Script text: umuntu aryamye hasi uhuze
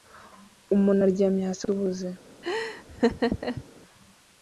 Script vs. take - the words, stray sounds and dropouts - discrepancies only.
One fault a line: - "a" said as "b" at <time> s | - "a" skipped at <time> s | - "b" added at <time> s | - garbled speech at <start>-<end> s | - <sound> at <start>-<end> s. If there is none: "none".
- laugh at 2.4-3.6 s